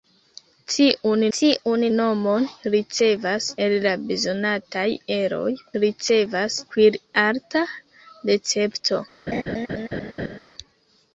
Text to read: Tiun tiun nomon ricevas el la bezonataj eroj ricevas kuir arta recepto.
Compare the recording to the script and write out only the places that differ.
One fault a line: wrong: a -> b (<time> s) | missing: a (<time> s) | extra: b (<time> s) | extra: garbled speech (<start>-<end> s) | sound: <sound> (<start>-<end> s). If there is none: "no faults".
sound: laugh (9.3-10.4 s)